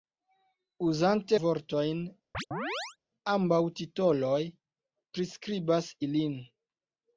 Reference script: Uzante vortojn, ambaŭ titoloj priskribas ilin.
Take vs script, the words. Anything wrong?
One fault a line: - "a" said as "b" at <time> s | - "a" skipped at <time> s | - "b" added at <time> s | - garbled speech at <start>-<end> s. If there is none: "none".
none